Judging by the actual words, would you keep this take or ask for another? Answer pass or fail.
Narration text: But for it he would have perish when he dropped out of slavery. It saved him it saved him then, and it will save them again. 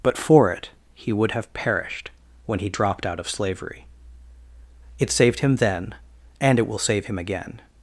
fail